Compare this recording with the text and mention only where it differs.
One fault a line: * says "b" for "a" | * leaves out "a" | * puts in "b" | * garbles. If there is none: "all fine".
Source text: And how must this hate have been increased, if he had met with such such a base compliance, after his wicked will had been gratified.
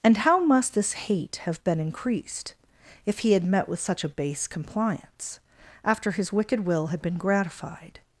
* leaves out "such"